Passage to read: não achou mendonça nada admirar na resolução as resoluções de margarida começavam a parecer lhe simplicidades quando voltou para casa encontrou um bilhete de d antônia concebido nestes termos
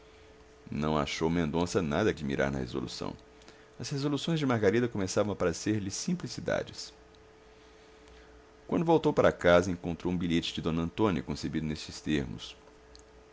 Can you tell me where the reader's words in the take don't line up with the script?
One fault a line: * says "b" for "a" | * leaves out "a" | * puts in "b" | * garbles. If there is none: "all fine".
all fine